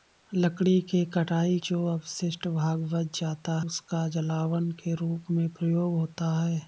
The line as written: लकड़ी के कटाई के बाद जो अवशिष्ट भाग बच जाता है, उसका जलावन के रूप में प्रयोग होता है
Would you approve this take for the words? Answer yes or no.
no